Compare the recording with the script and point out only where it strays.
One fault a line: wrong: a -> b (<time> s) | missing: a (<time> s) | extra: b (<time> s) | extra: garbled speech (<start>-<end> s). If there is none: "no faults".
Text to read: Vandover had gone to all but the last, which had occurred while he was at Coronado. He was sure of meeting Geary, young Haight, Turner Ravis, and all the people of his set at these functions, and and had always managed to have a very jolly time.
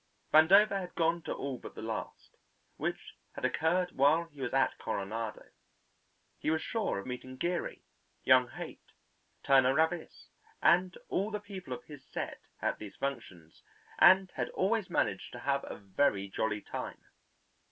missing: and (14.3 s)